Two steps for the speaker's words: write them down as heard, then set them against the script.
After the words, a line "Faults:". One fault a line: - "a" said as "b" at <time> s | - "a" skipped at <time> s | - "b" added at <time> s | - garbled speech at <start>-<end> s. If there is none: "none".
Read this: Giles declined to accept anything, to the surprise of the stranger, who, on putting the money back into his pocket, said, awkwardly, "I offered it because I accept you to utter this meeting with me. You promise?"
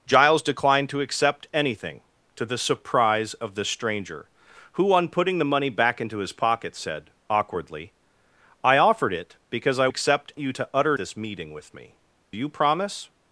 Giles declined to accept anything, to the surprise of the stranger, who, on putting the money back into his pocket, said, awkwardly, "I offered it because I accept you to utter this meeting with me. You promise?"
Faults:
none